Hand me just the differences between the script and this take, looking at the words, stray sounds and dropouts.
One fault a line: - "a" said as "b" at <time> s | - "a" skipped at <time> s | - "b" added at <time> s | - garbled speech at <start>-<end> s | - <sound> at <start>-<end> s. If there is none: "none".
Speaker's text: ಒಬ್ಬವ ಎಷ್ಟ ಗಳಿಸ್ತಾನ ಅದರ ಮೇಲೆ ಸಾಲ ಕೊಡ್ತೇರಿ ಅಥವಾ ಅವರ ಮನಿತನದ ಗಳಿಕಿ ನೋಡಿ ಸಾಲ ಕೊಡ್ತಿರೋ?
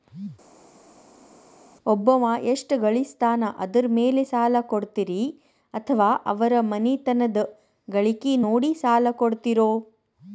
none